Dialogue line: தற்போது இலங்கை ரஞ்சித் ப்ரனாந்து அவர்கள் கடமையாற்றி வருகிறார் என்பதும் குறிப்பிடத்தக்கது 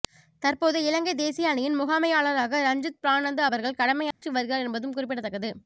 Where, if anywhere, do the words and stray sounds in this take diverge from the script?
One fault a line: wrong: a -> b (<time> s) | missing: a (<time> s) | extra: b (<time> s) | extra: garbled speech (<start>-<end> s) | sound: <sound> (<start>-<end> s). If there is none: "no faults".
extra: தேசிய அணியின் முகாமையாளராக (1.1 s)
sound: dropout (4.1-4.2 s)